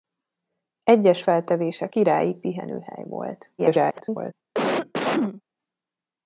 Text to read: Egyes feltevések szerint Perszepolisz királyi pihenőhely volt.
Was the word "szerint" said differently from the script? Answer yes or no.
yes